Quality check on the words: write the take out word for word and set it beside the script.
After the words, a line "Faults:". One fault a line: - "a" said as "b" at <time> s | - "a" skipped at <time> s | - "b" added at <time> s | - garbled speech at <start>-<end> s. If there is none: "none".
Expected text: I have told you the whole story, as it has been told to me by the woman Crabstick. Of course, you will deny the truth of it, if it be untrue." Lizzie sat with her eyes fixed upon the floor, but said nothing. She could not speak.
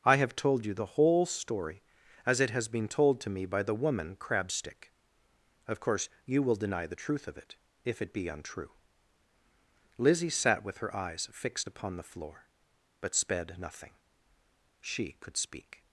I have told you the whole story, as it has been told to me by the woman Crabstick. Of course, you will deny the truth of it, if it be untrue." Lizzie sat with her eyes fixed upon the floor, but sped nothing. She could speak.
Faults:
- "said" said as "sped" at 13.1 s
- "not" skipped at 15.3 s